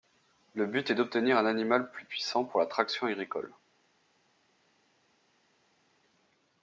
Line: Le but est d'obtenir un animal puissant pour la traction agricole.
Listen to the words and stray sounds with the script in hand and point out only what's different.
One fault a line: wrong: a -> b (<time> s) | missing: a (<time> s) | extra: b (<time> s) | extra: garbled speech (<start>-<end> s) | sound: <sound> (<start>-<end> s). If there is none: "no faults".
extra: plus (1.9 s)